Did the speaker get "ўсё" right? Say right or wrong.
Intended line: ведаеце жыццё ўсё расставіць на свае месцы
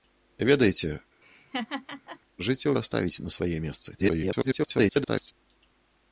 wrong